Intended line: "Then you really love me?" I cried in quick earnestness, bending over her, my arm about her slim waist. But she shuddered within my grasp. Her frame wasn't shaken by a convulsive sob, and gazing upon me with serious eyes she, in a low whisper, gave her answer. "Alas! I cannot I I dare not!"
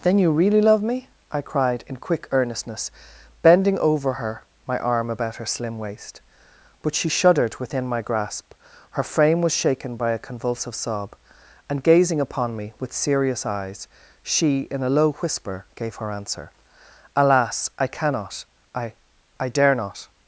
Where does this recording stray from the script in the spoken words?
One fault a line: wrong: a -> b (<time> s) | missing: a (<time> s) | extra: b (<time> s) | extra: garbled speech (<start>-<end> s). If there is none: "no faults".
wrong: wasn't -> was (9.4 s)